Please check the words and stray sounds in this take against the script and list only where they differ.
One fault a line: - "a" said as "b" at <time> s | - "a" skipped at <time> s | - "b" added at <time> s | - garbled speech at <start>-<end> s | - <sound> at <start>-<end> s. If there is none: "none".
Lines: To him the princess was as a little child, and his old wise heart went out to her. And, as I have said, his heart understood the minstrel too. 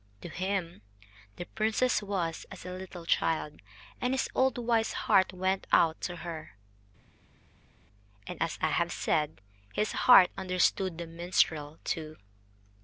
none